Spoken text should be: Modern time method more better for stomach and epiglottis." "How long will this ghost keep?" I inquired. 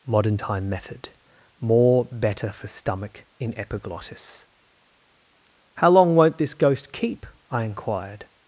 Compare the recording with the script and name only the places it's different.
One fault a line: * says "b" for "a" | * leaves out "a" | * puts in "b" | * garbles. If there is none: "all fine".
* says "in" for "and"
* says "won't" for "will"